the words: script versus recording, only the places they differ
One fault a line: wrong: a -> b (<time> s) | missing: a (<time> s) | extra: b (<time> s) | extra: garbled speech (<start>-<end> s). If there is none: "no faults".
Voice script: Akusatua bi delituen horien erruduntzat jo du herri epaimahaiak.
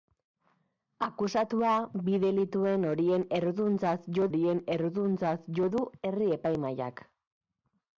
extra: horien erruduntzat jo (4.3 s)